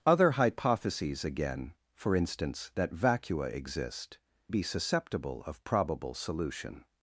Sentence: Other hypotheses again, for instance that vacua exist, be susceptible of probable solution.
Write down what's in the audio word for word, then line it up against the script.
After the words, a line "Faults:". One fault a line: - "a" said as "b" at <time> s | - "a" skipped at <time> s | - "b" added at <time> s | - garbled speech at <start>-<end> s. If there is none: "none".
Other hypotheses again, for instance that vacua exist, be susceptible of probable solution.
Faults:
none